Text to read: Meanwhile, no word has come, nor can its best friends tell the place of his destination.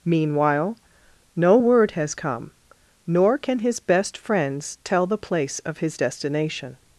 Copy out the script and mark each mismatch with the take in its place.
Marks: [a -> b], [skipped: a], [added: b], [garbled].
Meanwhile, no word has come, nor can [its -> his] best friends tell the place of his destination.